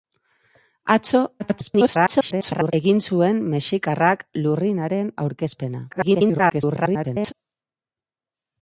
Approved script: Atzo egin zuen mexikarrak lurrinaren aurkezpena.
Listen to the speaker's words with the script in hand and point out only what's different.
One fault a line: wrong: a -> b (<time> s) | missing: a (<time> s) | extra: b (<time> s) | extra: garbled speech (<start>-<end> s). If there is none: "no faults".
extra: garbled speech (1.4-2.7 s)
extra: garbled speech (5.9-7.3 s)